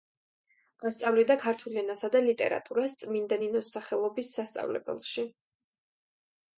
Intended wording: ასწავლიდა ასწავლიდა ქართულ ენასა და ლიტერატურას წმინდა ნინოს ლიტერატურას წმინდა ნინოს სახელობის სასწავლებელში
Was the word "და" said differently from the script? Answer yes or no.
no